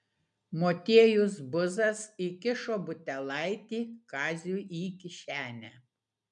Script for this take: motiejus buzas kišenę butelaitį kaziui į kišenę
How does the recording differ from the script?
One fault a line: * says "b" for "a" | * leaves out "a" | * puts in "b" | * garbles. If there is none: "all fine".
* says "įkišo" for "kišenę"